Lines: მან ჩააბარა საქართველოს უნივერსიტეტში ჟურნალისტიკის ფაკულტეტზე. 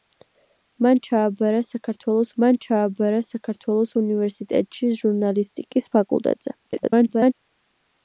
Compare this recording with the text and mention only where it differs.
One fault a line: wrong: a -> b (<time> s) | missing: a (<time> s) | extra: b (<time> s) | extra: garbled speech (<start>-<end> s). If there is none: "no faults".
extra: მან ჩააბარა საქართველოს (2.4 s)
extra: garbled speech (6.7-7.3 s)